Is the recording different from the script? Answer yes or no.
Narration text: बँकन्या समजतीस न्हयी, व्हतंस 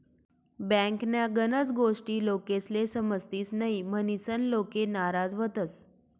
yes